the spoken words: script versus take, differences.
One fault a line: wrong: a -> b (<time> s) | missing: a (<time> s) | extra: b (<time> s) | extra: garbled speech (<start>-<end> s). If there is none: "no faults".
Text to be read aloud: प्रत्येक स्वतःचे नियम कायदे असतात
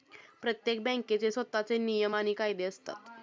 extra: बँकेचे (0.8 s)
extra: आणि (2.1 s)